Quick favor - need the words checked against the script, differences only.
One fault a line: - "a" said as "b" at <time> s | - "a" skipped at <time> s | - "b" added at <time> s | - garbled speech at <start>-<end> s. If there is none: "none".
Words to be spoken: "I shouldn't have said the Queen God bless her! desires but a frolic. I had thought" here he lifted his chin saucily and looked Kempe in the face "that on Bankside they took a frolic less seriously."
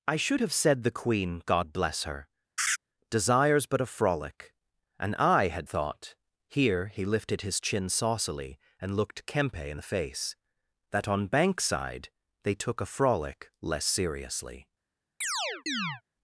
- "shouldn't" said as "should" at 0.1 s
- "And" added at 5.0 s